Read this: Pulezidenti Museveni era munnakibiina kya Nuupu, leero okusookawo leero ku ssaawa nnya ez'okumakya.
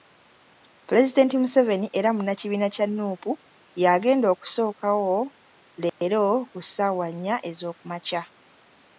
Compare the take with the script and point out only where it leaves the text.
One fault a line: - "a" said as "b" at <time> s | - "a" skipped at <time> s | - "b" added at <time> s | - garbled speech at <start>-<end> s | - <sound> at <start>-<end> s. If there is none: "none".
- "leero" said as "y'agenda" at 3.8 s
- dropout at 5.9-6.0 s